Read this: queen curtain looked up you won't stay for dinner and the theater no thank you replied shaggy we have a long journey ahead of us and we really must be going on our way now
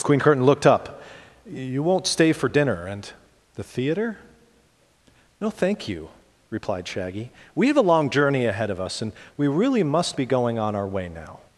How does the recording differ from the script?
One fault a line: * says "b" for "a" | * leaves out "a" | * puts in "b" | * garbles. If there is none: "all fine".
all fine